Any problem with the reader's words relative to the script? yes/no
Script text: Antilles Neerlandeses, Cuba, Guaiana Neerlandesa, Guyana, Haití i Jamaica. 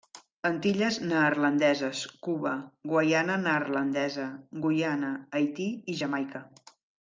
no